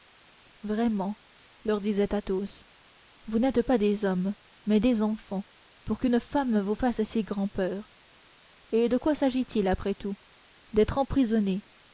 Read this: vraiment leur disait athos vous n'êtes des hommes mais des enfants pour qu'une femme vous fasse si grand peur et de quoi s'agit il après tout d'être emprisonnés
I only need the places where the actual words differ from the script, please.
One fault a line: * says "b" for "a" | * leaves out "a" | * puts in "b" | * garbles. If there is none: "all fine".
* puts in "pas"